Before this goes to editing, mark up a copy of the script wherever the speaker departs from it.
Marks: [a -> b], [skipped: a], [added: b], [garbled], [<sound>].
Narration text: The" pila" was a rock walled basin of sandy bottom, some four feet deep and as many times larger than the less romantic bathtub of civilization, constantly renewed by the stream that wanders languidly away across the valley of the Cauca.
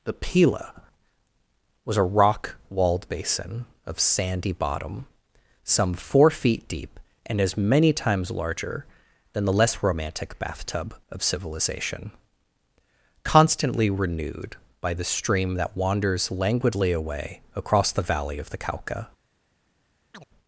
The" pila" was a rock walled basin of sandy bottom, some four feet deep and as many times larger than the less romantic bathtub of civilization, constantly renewed by the stream that wanders languidly away across the valley of the Cauca. [chirp]